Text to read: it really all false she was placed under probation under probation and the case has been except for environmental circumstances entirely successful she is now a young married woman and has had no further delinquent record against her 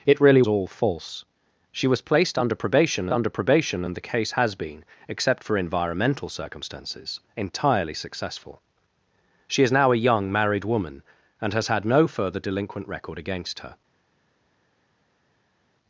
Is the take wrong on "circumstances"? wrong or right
right